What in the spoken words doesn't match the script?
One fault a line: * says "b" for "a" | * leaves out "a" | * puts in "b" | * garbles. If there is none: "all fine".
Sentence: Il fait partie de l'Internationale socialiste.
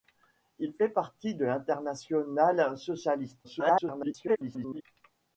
* garbles